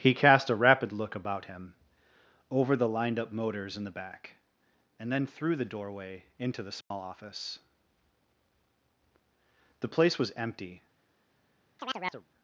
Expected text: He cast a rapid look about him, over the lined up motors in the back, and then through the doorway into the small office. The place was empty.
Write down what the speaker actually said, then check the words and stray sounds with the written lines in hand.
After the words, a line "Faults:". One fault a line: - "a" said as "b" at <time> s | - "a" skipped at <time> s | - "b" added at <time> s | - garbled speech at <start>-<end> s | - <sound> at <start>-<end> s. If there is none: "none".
He cast a rapid look about him, over the lined up motors in the back, and then through the doorway into the small office. The place was empty.
Faults:
- dropout at 6.8-6.9 s
- chirp at 11.8-12.3 s